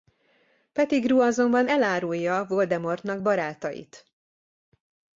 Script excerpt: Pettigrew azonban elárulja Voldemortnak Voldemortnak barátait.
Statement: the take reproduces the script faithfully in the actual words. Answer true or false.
false